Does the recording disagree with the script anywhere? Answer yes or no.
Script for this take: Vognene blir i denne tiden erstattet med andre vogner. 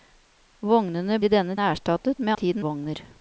yes